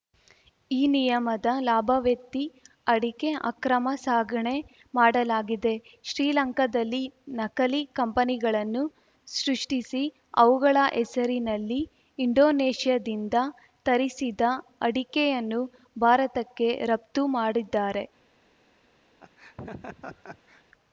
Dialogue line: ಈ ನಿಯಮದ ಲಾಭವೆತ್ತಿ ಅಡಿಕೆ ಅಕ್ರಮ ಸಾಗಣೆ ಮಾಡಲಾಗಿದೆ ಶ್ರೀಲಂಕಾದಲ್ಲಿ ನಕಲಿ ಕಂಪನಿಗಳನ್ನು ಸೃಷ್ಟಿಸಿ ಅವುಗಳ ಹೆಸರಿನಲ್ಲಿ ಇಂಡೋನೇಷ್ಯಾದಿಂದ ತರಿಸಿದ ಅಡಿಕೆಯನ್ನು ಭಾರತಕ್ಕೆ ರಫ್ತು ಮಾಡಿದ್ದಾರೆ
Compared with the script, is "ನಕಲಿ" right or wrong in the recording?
right